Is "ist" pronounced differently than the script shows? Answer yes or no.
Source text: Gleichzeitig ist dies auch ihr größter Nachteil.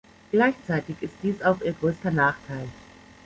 no